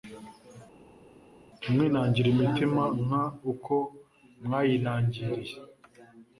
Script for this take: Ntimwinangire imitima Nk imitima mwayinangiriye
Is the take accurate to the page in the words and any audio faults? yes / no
no